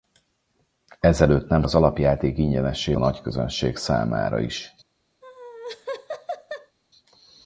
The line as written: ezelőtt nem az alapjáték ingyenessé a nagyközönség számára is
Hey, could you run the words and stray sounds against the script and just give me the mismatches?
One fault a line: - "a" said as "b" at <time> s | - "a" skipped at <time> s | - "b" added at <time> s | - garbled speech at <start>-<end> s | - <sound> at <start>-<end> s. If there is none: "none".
- laugh at 5.2-6.8 s